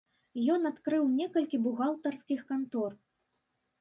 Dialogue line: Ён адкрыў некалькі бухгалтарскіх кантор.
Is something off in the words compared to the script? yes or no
no